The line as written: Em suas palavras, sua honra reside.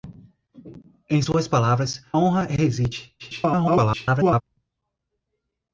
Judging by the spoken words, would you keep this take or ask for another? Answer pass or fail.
fail